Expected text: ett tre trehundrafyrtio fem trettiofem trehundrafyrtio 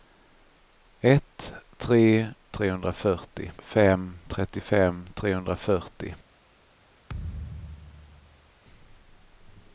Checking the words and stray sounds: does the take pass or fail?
fail